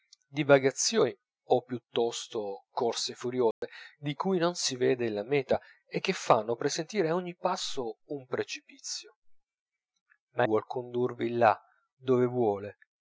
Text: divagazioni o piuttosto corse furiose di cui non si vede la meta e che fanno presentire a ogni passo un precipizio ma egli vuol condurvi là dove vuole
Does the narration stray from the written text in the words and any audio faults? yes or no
yes